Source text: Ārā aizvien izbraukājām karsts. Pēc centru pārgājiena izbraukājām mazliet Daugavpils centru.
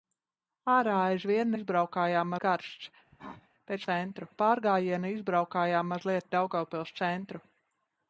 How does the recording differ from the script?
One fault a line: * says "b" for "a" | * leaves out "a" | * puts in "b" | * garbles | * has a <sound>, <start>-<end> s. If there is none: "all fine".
* has a cough, 3.1-3.5 s